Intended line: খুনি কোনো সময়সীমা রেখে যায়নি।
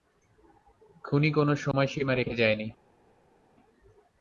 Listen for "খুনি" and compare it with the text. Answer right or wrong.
right